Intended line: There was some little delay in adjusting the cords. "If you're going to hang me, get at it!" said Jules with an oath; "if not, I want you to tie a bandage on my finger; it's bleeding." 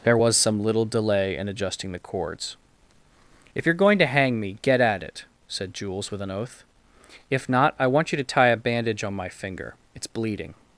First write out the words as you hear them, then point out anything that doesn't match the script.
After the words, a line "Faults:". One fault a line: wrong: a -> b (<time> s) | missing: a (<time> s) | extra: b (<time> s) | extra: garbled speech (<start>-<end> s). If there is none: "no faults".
There was some little delay in adjusting the cords. "If you're going to hang me, get at it!" said Jules with an oath; "if not, I want you to tie a bandage on my finger; it's bleeding."
Faults:
no faults